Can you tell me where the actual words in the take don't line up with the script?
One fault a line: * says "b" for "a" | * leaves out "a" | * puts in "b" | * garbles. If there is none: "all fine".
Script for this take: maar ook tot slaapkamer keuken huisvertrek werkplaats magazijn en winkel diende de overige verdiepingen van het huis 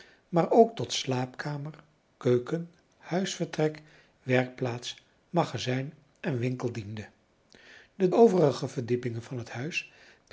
all fine